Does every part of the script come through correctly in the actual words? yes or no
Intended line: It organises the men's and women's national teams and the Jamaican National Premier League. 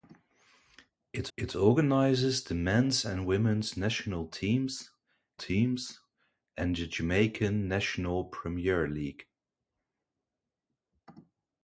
no